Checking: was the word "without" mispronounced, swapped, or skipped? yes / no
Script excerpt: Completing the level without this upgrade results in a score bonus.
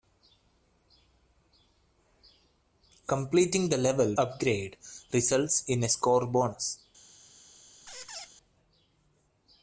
yes